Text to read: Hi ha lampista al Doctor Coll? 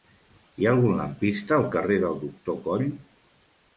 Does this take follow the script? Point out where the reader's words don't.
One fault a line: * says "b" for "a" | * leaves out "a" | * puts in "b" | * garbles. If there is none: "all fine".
* puts in "algun"
* puts in "carrer del"